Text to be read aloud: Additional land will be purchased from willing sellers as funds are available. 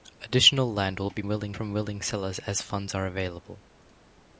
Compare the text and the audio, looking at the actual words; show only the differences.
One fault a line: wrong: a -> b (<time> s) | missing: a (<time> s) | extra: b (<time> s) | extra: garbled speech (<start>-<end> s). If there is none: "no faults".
wrong: purchased -> willing (1.3 s)